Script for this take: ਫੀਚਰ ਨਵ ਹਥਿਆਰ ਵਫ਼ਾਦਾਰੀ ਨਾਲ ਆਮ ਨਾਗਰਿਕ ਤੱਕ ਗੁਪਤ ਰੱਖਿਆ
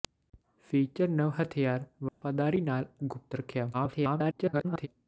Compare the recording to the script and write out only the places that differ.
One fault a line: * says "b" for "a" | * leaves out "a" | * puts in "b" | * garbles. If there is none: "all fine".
* leaves out "ਆਮ ਨਾਗਰਿਕ ਤੱਕ"
* garbles